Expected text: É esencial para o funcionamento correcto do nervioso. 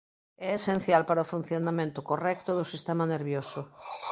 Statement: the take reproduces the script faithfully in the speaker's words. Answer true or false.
false